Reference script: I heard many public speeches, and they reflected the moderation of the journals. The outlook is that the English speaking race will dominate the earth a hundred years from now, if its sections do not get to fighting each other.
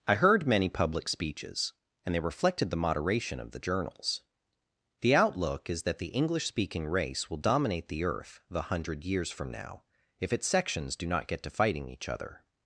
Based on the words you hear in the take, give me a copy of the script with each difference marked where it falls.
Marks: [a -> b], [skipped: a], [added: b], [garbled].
I heard many public speeches, and they reflected the moderation of the journals. The outlook is that the English speaking race will dominate the earth [a -> the] hundred years from now, if its sections do not get to fighting each other.